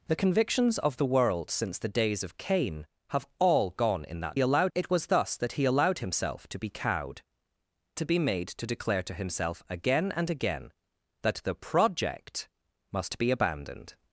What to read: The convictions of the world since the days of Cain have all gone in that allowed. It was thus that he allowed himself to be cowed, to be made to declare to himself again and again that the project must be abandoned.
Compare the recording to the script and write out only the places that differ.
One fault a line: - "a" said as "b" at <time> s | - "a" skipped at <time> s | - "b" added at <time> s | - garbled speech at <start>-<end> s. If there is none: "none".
none